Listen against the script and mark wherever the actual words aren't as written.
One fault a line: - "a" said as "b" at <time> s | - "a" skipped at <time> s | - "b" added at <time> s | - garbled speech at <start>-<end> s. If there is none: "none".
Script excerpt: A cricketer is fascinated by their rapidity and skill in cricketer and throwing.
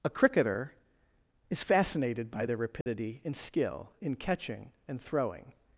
- "cricketer" said as "catching" at 4.2 s